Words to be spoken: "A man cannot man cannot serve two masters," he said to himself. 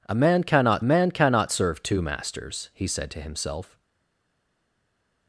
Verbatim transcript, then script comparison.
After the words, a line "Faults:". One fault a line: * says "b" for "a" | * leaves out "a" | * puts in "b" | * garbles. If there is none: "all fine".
"A man cannot man cannot serve two masters," he said to himself.
Faults:
all fine